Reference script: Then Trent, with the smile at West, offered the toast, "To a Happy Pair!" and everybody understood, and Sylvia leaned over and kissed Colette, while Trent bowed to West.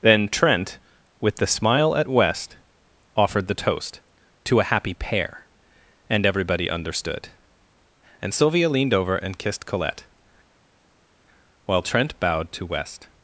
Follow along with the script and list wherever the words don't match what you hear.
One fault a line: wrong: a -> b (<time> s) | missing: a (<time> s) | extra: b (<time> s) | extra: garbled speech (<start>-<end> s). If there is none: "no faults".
no faults